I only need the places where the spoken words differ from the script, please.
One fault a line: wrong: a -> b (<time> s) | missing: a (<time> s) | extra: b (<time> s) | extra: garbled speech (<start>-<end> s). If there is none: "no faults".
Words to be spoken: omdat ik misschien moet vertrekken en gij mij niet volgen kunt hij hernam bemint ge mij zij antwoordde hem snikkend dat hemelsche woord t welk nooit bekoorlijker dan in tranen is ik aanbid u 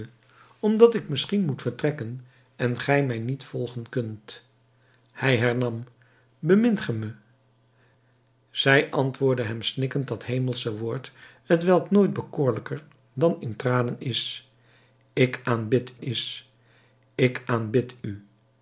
extra: is ik aanbid (16.0 s)